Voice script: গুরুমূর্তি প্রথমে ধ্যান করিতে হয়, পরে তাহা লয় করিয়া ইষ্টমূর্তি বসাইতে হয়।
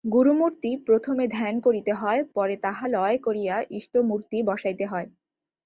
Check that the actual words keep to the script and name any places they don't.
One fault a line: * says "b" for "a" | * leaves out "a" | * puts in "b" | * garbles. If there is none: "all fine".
all fine